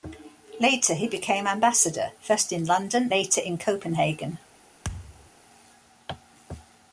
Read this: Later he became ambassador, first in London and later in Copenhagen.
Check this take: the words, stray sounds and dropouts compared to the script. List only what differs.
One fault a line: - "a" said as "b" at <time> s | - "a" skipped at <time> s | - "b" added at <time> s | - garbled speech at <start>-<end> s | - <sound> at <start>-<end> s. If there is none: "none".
- "and" skipped at 3.1 s
- thud at 4.8-5.3 s